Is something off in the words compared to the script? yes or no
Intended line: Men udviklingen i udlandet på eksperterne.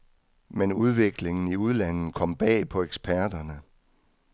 yes